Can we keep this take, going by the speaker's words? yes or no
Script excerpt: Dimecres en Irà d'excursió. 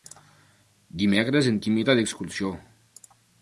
no